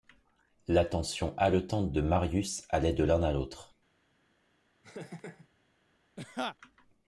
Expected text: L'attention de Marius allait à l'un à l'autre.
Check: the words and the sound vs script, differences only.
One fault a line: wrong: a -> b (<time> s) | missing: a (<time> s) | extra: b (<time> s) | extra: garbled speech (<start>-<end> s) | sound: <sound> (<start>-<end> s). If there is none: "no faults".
extra: haletante (1.4 s)
wrong: à -> de (2.9 s)
sound: laugh (4.8-5.5 s)
sound: laugh (6.2-6.6 s)